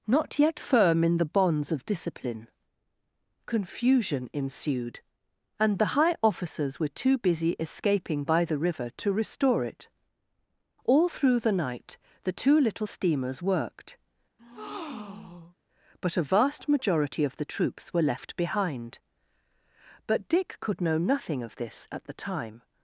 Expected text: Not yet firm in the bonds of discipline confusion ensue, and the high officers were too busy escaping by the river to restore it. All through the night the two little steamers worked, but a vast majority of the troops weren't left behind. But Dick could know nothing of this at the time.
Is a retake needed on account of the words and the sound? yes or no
yes